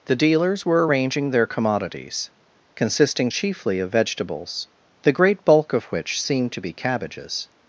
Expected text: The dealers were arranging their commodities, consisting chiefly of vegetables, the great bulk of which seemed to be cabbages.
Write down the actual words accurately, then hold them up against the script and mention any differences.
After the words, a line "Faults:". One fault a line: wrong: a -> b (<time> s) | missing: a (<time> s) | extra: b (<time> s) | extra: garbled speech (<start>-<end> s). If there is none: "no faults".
The dealers were arranging their commodities, consisting chiefly of vegetables, the great bulk of which seemed to be cabbages.
Faults:
no faults